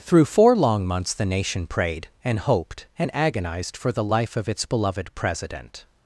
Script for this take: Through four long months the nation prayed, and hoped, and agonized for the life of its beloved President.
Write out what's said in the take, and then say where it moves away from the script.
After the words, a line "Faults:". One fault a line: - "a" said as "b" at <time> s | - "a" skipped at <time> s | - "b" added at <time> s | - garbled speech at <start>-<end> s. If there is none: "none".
Through four long months the nation prayed, and hoped, and agonized for the life of its beloved President.
Faults:
none